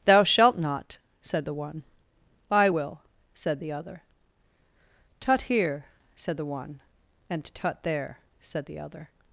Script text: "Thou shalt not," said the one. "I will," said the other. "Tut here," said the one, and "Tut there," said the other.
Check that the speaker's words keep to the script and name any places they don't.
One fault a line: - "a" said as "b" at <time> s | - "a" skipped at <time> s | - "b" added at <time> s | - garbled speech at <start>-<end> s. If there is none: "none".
none